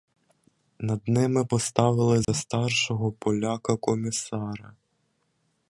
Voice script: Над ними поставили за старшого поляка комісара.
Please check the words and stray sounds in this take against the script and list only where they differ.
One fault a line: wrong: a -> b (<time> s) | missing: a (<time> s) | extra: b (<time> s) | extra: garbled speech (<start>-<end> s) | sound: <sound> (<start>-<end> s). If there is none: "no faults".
sound: dropout (2.2-2.3 s)